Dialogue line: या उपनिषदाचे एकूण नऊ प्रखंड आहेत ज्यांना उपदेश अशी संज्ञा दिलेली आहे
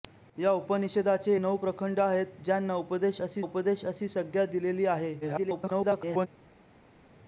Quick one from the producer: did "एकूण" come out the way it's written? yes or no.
no